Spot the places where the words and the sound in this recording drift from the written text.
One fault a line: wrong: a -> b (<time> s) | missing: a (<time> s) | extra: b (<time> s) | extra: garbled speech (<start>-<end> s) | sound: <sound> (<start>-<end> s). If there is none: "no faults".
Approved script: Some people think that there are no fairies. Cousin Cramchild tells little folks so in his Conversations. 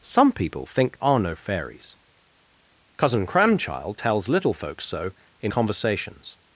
missing: that there (1.0 s)
missing: his (5.5 s)